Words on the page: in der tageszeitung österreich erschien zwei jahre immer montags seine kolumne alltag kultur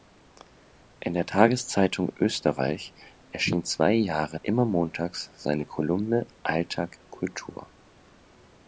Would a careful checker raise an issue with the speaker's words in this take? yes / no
no